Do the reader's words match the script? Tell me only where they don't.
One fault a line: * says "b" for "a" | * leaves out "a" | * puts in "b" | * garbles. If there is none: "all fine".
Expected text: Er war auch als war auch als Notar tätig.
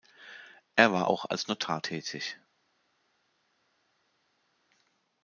* leaves out "war auch als"